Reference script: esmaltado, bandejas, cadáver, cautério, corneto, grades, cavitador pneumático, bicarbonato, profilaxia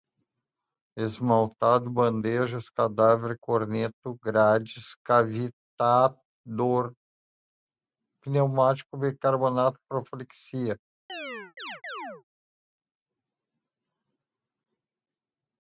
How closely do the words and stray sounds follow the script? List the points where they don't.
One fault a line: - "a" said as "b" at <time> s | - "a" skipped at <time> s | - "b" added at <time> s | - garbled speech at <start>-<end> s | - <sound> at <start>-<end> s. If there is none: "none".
- "cautério" skipped at 3.4 s
- chirp at 11.1-12.2 s